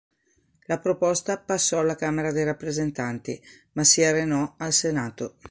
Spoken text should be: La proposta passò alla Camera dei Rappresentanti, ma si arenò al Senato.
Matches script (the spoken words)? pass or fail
pass